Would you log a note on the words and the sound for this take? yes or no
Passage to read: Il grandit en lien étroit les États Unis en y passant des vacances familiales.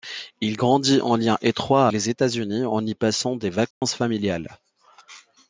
yes